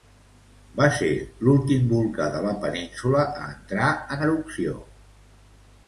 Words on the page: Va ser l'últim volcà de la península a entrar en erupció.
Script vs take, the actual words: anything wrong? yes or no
no